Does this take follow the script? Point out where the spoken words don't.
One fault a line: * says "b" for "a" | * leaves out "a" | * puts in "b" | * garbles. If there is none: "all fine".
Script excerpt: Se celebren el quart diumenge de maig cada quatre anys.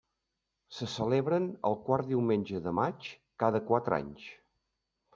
all fine